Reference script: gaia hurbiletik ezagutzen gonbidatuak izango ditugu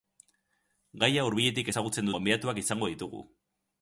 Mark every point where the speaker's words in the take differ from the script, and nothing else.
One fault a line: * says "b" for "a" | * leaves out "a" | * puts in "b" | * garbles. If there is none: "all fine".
all fine